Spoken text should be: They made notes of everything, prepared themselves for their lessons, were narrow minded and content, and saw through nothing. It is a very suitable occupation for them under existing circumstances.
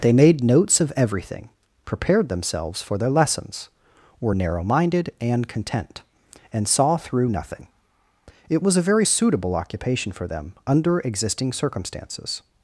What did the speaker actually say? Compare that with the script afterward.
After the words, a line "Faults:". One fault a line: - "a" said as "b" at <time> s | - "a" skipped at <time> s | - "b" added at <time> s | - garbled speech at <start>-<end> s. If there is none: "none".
They made notes of everything, prepared themselves for their lessons, were narrow minded and content, and saw through nothing. It was a very suitable occupation for them under existing circumstances.
Faults:
- "is" said as "was" at 8.6 s